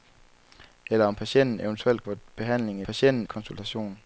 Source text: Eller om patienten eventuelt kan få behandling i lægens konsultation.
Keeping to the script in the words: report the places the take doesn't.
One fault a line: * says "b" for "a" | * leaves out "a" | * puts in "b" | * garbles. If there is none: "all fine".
* leaves out "kan"
* says "patienten" for "lægens"